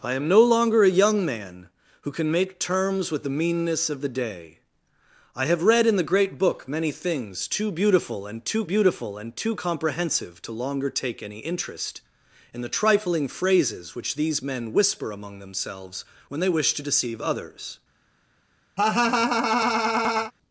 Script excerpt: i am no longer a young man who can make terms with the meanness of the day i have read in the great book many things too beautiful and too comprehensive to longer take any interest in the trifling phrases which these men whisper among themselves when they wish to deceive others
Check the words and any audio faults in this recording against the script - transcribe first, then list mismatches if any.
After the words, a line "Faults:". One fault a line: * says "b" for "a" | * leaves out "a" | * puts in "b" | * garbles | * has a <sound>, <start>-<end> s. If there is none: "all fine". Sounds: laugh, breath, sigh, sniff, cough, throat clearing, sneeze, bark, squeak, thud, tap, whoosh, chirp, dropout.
i am no longer a young man who can make terms with the meanness of the day i have read in the great book many things too beautiful and too beautiful and too comprehensive to longer take any interest in the trifling phrases which these men whisper among themselves when they wish to deceive others
Faults:
* puts in "beautiful and too"
* has a laugh, 18.8-20.3 s